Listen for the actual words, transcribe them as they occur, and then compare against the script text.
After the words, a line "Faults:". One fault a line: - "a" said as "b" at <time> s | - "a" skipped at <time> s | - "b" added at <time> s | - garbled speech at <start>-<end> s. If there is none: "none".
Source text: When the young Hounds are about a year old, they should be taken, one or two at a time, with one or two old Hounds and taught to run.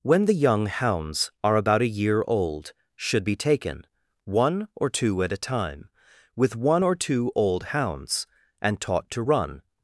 When the young Hounds are about a year old, should be taken, one or two at a time, with one or two old Hounds and taught to run.
Faults:
- "they" skipped at 2.7 s